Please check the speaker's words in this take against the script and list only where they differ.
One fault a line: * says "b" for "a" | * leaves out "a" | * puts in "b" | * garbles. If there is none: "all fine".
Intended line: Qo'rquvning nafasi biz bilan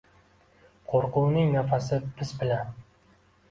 all fine